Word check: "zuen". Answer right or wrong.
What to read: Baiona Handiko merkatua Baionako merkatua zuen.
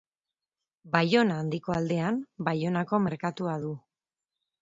wrong